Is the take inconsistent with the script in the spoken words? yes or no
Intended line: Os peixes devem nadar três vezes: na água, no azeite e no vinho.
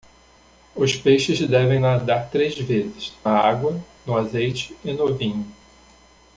yes